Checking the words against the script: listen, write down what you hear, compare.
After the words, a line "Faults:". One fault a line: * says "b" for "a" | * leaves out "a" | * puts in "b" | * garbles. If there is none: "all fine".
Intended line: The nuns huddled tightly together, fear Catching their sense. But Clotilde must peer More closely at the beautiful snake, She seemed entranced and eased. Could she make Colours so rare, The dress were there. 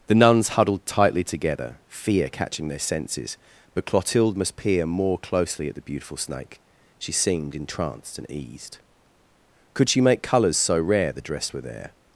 The nuns huddled tightly together, fear Catching their senses. But Clotilde must peer More closely at the beautiful snake, She seemed entranced and eased. Could she make Colours so rare, The dress were there.
Faults:
* says "senses" for "sense"